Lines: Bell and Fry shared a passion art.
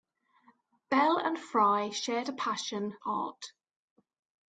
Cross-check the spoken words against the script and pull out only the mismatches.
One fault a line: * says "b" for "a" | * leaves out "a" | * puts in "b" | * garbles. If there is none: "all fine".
all fine